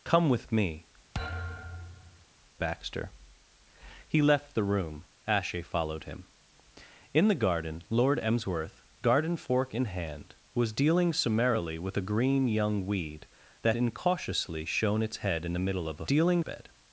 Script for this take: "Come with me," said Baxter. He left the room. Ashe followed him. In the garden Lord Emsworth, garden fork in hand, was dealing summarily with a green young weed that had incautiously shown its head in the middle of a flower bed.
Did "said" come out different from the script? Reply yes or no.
yes